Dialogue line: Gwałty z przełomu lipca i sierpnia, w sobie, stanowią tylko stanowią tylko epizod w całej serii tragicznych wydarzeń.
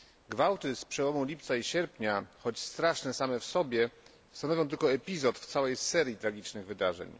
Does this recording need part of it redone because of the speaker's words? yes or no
yes